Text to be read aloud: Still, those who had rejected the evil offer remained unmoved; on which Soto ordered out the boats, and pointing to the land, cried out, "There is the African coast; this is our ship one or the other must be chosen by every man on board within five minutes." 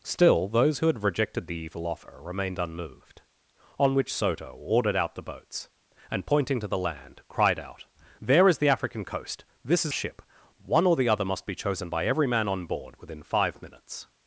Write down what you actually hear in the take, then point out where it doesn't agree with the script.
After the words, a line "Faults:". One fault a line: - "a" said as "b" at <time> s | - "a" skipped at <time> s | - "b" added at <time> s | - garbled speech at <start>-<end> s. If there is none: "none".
Still, those who had rejected the evil offer remained unmoved; on which Soto ordered out the boats, and pointing to the land, cried out, "There is the African coast; this is ship one or the other must be chosen by every man on board within five minutes."
Faults:
- "our" skipped at 9.9 s